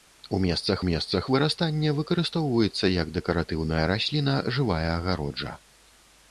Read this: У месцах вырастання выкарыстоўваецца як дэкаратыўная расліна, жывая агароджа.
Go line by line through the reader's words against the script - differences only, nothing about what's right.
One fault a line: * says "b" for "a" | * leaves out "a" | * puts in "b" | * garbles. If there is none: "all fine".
* puts in "месцах"